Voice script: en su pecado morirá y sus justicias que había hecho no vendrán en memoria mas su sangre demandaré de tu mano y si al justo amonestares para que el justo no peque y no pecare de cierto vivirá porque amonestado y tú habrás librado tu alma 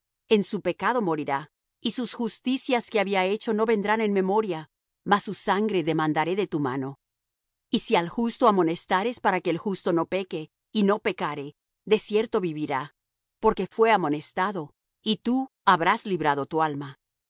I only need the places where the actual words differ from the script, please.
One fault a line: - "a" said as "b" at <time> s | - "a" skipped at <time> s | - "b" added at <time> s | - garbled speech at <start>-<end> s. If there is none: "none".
- "fué" added at 13.7 s